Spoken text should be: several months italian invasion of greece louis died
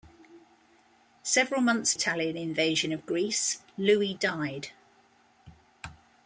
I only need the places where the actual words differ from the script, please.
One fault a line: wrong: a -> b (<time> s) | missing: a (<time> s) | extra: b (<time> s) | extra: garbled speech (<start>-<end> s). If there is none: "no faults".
no faults